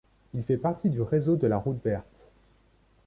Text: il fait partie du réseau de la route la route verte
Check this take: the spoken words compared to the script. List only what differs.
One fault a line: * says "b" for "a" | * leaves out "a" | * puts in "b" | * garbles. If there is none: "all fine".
* leaves out "la route"